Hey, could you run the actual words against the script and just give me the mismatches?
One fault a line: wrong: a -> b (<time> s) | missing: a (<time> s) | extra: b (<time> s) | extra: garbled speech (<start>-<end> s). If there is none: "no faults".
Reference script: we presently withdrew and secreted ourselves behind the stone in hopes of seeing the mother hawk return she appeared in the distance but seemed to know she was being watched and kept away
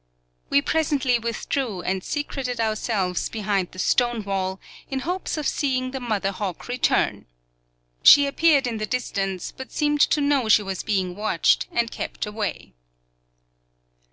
extra: wall (4.2 s)